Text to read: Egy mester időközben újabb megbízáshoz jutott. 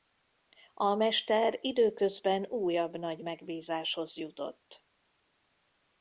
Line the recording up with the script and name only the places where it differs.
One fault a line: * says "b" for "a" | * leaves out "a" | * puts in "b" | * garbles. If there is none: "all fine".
* says "A" for "Egy"
* puts in "nagy"